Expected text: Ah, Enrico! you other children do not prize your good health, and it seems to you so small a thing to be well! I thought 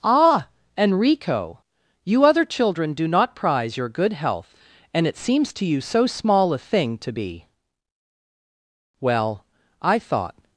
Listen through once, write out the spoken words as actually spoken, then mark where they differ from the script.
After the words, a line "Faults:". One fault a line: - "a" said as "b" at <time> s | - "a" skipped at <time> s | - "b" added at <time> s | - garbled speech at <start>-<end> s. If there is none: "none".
Ah, Enrico! you other children do not prize your good health, and it seems to you so small a thing to be well! I thought
Faults:
none